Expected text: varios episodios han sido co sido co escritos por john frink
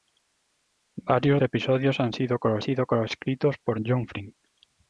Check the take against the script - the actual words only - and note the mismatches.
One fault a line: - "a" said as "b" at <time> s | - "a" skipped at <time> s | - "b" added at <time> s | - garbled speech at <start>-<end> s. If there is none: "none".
none